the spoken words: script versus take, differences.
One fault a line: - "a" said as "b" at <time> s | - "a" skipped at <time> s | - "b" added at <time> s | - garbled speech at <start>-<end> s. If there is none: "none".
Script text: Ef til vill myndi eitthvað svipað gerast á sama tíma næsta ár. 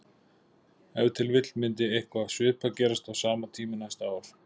none